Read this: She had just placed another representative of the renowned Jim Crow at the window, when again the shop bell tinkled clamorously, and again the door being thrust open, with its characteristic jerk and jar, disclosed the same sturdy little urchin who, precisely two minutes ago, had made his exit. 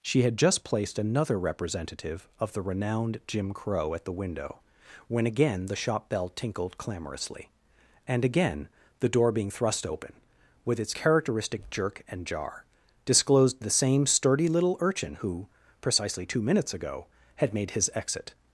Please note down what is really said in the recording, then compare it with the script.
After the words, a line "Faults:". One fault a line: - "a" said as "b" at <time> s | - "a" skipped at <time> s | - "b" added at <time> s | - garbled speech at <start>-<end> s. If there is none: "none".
She had just placed another representative of the renowned Jim Crow at the window, when again the shop bell tinkled clamorously, and again the door being thrust open, with its characteristic jerk and jar, disclosed the same sturdy little urchin who, precisely two minutes ago, had made his exit.
Faults:
none